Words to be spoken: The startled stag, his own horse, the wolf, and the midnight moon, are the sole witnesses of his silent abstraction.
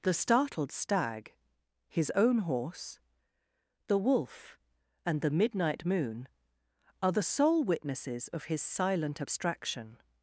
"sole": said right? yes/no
yes